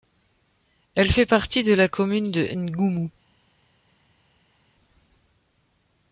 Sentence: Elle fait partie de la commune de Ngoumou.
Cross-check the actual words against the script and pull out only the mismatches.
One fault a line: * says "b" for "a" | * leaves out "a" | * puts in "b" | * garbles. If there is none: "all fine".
all fine